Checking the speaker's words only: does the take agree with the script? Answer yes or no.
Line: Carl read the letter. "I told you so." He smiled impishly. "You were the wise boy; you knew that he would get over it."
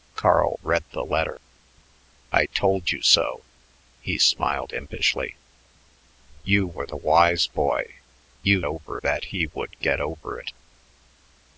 no